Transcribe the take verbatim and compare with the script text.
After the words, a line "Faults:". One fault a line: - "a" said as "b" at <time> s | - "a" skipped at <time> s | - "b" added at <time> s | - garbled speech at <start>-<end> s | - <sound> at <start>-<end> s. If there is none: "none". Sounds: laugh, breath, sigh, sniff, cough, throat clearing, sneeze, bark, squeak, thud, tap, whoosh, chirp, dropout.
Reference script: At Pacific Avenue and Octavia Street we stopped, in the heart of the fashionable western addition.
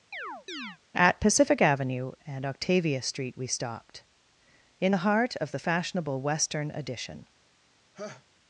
At Pacific Avenue and Octavia Street we stopped, in the heart of the fashionable western addition.
Faults:
- chirp at 0.1-0.8 s
- laugh at 7.9-8.2 s